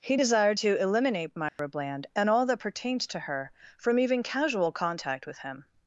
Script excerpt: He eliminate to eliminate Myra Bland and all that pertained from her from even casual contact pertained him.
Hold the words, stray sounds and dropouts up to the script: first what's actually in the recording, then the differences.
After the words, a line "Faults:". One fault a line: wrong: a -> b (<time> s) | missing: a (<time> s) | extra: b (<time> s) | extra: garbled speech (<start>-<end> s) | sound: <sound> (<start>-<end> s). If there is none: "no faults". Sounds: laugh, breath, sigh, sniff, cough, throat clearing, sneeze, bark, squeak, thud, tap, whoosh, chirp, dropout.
He desired to eliminate Myra Bland and all that pertained to her from even casual contact with him.
Faults:
wrong: eliminate -> desired (0.1 s)
sound: dropout (1.5-1.6 s)
wrong: from -> to (3.1 s)
wrong: pertained -> with (5.3 s)